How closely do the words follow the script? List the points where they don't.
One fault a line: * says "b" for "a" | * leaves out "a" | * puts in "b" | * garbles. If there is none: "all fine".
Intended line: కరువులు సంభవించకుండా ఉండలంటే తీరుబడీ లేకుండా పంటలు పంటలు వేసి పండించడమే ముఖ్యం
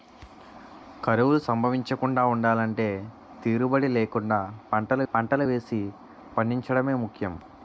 all fine